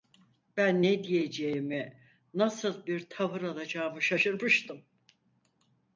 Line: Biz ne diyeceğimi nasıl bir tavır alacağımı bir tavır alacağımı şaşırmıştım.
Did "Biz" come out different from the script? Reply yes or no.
yes